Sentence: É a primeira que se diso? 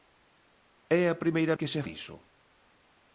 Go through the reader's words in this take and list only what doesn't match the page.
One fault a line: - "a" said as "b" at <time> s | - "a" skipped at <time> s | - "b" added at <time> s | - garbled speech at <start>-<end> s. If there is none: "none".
none